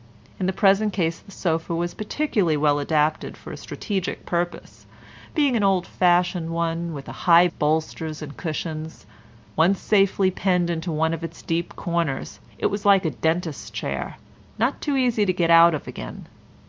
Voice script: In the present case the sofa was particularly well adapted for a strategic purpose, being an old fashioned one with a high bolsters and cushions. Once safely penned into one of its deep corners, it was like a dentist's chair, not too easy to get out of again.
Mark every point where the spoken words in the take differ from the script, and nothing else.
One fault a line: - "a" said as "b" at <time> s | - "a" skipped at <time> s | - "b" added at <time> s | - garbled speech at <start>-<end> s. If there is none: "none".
none